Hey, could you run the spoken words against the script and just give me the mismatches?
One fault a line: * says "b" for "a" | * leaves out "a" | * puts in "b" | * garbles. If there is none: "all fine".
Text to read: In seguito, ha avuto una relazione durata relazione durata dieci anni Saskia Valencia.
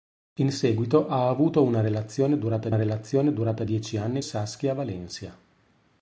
all fine